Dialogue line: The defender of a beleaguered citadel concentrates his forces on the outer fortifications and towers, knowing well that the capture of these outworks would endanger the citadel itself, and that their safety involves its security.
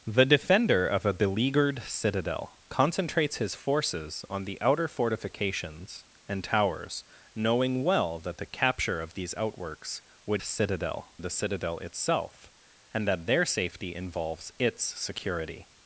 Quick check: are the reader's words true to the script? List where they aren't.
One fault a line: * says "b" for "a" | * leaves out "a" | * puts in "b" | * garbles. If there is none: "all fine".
* says "citadel" for "endanger"